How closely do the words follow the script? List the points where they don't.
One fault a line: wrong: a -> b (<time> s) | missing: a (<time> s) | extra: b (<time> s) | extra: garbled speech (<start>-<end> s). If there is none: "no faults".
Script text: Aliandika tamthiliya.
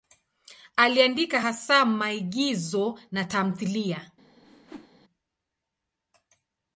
extra: hasa maigizo na (1.4 s)